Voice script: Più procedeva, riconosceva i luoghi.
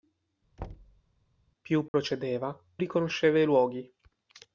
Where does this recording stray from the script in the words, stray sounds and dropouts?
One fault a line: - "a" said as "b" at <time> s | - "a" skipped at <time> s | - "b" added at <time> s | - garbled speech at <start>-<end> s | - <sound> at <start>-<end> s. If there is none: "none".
- thud at 0.6-1.0 s
- dropout at 1.9-1.9 s